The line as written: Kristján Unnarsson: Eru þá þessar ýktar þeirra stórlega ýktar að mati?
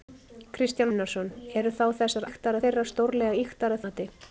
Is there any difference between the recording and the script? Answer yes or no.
no